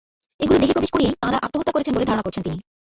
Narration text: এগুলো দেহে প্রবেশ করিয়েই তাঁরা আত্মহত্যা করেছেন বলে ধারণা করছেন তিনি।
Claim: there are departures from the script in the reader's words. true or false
false